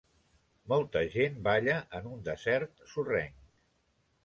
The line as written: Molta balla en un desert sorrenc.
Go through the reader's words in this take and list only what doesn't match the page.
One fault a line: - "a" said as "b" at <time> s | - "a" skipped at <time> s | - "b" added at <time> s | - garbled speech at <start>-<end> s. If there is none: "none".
- "gent" added at 1.1 s